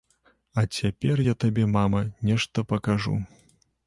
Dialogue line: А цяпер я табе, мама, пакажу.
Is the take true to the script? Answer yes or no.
no